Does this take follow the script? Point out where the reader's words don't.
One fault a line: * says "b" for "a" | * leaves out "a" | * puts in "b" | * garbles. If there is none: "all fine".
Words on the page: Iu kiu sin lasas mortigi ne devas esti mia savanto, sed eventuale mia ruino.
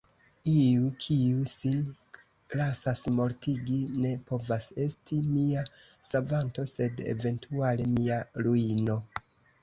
* says "povas" for "devas"